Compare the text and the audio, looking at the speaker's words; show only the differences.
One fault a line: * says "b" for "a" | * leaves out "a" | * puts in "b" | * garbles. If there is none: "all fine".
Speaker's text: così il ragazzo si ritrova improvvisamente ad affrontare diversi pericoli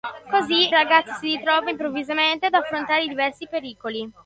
* leaves out "il"